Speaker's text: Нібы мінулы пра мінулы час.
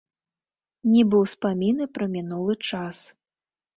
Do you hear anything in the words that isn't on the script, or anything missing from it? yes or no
yes